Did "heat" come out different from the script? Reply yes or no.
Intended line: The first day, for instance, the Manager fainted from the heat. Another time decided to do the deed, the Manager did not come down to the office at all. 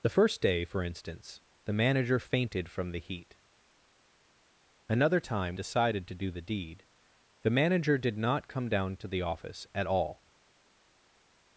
no